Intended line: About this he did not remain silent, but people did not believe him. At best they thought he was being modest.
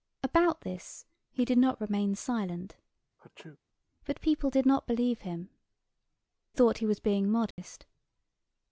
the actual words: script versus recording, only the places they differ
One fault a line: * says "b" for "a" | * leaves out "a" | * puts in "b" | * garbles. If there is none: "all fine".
* leaves out "At best they"